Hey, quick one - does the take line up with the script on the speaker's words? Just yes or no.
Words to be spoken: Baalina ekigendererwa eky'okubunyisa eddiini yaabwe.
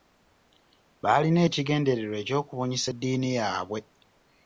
yes